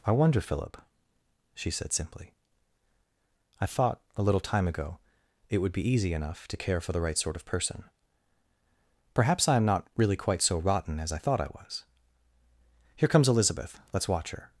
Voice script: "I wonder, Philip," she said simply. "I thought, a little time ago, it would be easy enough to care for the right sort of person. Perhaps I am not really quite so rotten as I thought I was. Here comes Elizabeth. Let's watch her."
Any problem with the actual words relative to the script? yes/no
no